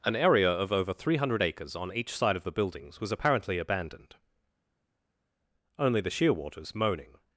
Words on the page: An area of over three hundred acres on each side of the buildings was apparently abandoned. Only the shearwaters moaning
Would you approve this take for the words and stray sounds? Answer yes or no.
yes